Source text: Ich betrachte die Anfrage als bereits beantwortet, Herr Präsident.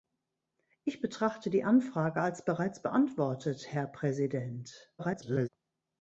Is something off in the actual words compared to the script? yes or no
yes